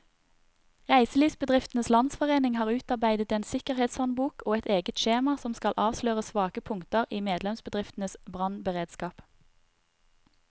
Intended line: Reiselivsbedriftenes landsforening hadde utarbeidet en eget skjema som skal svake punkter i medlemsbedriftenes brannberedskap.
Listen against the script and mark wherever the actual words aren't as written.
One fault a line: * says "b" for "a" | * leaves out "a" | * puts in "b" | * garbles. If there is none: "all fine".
* says "har" for "hadde"
* puts in "sikkerhetshåndbok og et"
* puts in "avsløre"